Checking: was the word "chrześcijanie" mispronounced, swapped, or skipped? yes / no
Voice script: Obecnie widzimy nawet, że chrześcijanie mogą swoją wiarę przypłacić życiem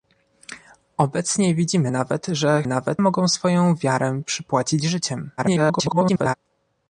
yes